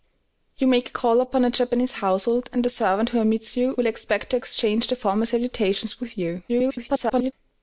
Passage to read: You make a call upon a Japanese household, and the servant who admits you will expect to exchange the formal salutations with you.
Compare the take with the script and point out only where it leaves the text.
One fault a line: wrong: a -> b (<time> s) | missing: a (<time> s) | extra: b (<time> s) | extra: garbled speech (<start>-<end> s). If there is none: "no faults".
extra: garbled speech (6.5-7.3 s)